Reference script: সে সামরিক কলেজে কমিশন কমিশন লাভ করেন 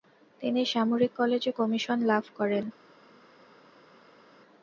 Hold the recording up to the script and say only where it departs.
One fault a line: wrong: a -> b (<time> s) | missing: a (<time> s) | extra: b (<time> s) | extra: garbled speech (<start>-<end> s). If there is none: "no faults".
wrong: সে -> তিনি (0.4 s)
missing: কমিশন (2.0 s)